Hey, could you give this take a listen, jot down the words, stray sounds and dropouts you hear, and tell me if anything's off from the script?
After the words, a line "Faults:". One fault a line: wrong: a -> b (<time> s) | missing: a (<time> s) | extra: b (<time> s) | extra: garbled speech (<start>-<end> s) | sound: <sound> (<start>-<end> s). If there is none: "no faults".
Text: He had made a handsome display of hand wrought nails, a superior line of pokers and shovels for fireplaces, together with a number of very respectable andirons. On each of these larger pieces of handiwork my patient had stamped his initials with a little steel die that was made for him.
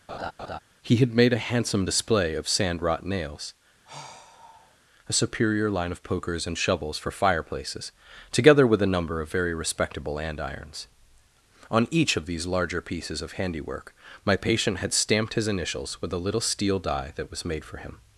He had made a handsome display of sand wrought nails, a superior line of pokers and shovels for fireplaces, together with a number of very respectable andirons. On each of these larger pieces of handiwork my patient had stamped his initials with a little steel die that was made for him.
Faults:
sound: laugh (0.1-0.6 s)
wrong: hand -> sand (2.5 s)
sound: sigh (3.9-4.8 s)